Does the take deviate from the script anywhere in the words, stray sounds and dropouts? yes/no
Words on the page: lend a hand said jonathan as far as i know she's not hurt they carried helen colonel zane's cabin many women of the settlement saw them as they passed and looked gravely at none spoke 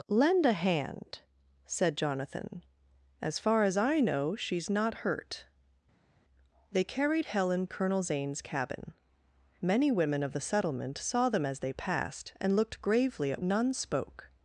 no